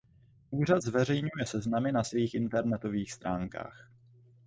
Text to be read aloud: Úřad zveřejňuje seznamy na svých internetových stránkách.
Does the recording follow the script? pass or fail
pass